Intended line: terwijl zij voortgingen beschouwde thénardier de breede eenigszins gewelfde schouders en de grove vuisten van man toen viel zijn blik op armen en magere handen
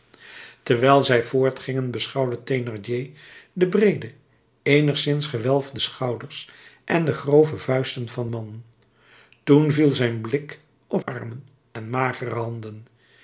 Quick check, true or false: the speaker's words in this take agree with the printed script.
true